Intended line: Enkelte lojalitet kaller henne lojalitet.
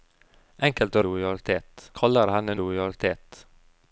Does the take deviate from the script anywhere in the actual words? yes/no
no